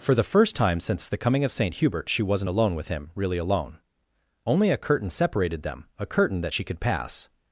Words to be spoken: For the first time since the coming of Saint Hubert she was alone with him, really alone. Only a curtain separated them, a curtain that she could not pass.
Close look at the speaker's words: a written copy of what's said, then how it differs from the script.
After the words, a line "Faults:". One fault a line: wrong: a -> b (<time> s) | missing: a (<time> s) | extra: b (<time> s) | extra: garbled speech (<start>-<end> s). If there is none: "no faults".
For the first time since the coming of Saint Hubert she wasn't alone with him, really alone. Only a curtain separated them, a curtain that she could pass.
Faults:
wrong: was -> wasn't (2.2 s)
missing: not (6.8 s)